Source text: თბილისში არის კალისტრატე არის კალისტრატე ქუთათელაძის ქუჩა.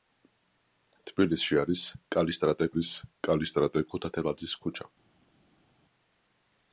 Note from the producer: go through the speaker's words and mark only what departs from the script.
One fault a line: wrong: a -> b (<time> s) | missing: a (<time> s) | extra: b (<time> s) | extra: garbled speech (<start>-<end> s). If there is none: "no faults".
no faults